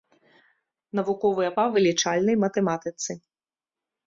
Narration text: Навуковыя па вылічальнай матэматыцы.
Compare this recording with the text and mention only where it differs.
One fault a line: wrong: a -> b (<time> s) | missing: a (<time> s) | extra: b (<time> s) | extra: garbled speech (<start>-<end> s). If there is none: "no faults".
no faults